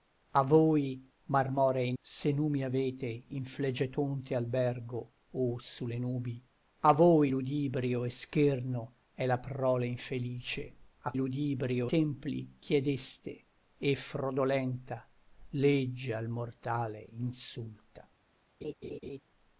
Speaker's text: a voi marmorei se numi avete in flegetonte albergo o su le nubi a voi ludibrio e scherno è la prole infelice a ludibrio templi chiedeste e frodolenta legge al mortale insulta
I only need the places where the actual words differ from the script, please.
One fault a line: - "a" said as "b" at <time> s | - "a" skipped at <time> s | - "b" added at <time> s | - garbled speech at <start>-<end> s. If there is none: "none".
none